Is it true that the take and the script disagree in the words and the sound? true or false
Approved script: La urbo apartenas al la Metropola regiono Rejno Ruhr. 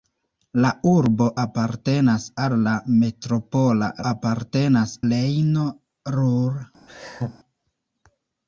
true